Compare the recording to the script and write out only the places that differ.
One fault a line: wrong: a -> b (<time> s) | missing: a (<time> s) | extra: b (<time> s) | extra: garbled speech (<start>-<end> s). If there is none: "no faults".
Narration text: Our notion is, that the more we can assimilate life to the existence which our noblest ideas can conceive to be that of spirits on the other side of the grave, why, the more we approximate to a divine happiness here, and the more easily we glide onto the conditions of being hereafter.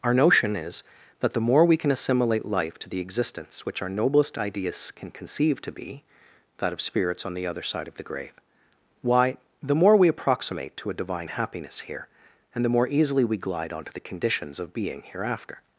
no faults